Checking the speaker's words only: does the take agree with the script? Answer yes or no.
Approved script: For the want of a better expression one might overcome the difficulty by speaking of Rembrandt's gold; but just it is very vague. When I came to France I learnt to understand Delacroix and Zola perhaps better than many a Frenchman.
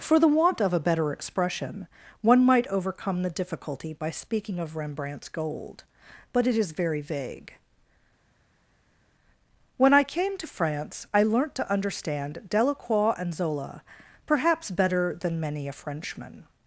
no